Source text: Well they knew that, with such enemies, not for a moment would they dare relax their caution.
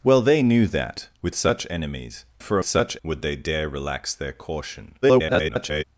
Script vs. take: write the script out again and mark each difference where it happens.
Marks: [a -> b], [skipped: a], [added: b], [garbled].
Well they knew that, with such enemies, [skipped: not] for a [moment -> such] would they dare relax their caution. [garbled]